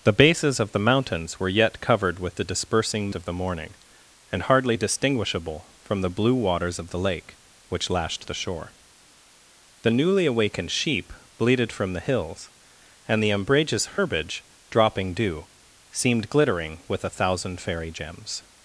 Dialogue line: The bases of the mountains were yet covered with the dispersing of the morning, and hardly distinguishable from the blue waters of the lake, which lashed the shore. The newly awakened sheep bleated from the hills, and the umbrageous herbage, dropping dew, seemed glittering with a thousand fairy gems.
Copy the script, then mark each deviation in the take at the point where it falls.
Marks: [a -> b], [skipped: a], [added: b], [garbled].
The bases of the mountains were yet covered with the dispersing of the morning, and hardly distinguishable from the blue waters of the lake, which lashed the shore. The newly awakened sheep bleated from the hills, and the umbrageous herbage, dropping dew, seemed glittering with a thousand fairy gems.